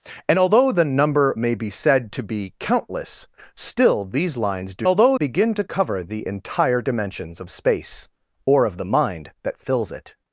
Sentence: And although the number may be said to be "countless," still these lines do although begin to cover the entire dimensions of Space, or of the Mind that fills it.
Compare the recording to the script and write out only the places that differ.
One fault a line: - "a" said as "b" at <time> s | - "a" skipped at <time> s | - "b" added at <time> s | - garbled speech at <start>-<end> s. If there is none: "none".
none